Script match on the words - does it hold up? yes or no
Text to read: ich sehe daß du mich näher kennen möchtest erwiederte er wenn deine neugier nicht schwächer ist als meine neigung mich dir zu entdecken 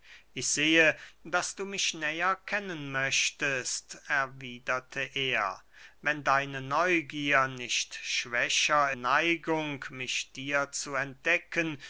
no